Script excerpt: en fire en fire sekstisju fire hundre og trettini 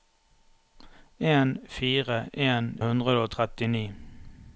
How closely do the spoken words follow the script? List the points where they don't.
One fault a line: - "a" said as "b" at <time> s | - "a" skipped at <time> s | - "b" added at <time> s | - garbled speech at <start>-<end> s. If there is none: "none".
- "fire sekstisju fire" skipped at 2.8 s